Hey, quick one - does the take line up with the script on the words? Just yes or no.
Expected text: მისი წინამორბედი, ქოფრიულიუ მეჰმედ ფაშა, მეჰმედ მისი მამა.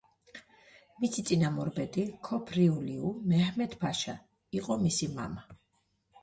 no